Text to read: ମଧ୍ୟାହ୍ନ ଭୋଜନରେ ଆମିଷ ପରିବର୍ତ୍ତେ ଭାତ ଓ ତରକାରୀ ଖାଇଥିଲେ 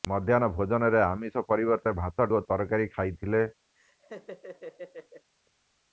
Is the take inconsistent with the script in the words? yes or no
no